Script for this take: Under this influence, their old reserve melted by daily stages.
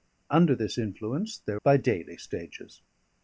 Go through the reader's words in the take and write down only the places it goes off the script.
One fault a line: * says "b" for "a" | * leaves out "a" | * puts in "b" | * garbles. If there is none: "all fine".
* leaves out "old reserve melted"